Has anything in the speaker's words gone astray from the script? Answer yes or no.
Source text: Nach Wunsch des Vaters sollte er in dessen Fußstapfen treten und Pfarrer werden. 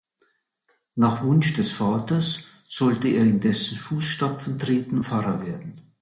yes